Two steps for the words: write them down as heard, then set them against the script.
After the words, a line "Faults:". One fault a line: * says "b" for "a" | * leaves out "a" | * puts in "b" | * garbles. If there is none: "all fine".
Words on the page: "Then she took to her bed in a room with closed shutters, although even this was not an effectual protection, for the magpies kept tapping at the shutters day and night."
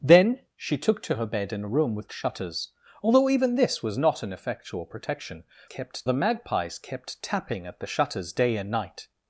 "Then she took to her bed in a room with shutters, although even this was not an effectual protection, kept the magpies kept tapping at the shutters day and night."
Faults:
* leaves out "closed"
* says "kept" for "for"